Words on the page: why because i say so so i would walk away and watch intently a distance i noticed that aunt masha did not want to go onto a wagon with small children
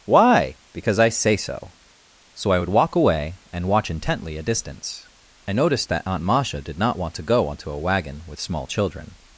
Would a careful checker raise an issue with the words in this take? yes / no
no